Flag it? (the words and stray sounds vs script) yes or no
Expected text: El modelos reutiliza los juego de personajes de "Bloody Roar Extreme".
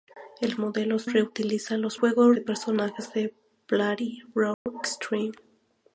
yes